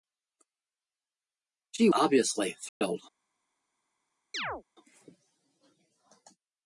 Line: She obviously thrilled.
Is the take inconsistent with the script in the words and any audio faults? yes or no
yes